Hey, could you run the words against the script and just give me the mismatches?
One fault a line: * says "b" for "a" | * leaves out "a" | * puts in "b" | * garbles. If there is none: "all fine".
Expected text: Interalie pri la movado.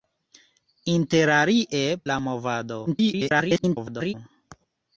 * leaves out "pri"
* garbles